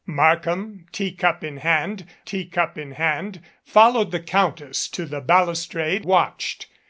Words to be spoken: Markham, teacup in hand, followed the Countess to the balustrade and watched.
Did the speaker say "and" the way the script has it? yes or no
no